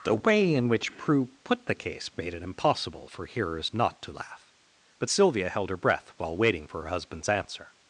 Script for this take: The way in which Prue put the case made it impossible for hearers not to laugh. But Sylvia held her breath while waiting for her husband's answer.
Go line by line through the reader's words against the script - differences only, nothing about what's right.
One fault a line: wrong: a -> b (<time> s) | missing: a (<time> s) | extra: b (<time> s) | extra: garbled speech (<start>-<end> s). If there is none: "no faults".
no faults